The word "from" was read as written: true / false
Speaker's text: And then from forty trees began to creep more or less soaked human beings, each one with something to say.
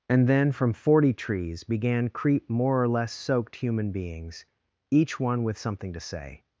true